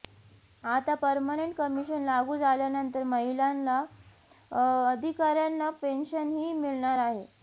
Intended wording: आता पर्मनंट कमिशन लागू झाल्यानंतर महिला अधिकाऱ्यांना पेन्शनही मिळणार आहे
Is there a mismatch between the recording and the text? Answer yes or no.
no